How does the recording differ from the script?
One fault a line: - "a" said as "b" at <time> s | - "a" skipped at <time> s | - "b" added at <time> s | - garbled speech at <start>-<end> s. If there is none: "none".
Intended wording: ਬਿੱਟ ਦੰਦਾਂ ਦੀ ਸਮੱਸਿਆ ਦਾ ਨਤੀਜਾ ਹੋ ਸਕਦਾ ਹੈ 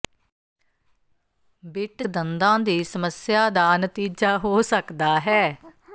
none